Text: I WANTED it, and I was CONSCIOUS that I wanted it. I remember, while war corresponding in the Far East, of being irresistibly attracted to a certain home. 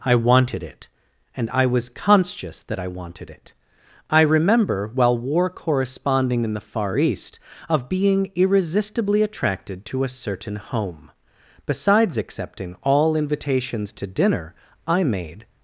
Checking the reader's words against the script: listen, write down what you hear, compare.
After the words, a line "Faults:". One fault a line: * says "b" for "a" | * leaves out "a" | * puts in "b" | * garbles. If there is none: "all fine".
I WANTED it, and I was CONSCIOUS that I wanted it. I remember, while war corresponding in the Far East, of being irresistibly attracted to a certain home. Besides accepting all invitations to dinner, I made
Faults:
* puts in "Besides accepting all invitations to dinner I made"